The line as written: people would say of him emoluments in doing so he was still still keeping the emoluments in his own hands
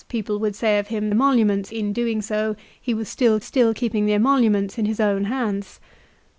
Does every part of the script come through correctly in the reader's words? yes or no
yes